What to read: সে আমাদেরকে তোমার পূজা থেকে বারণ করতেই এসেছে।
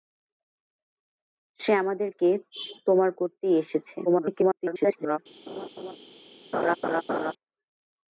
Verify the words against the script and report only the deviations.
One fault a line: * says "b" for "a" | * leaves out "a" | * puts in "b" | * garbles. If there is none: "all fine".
* leaves out "পূজা থেকে বারণ"
* garbles